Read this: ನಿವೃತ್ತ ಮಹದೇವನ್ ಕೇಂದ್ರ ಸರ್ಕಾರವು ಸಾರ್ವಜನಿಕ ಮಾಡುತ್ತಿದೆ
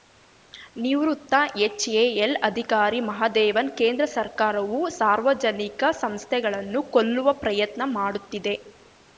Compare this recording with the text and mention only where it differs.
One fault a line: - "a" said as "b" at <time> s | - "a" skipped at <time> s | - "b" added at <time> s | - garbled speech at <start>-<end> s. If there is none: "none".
- "ಎಚ್‌ಎಎಲ್ ಅಧಿಕಾರಿ" added at 1.6 s
- "ಸಂಸ್ಥೆಗಳನ್ನು ಕೊಲ್ಲುವ ಪ್ರಯತ್ನ" added at 6.0 s